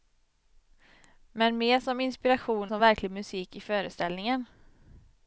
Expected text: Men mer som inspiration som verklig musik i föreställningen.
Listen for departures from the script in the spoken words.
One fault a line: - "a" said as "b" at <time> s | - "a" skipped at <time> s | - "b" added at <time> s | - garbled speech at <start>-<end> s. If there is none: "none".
none